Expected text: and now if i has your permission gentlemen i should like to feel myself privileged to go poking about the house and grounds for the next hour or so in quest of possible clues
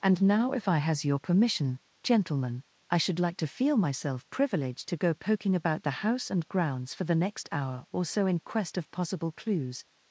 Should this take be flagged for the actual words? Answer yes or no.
no